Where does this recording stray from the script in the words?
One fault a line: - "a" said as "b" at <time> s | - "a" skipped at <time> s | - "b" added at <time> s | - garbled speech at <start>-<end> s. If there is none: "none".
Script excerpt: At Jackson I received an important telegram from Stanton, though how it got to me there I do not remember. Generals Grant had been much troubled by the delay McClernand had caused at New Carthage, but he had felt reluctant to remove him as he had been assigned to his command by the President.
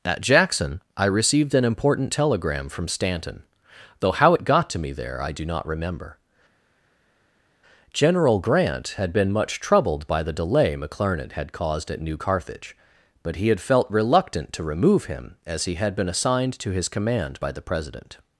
- "Generals" said as "General" at 7.9 s